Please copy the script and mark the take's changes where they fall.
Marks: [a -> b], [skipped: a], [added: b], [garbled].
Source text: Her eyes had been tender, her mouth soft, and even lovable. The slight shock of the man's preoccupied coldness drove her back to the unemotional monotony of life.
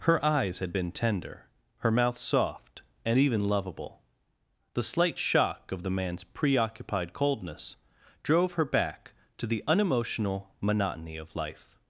Her eyes had been tender, her mouth soft, and even lovable. The slight shock of the man's preoccupied coldness drove her back to the unemotional monotony of life.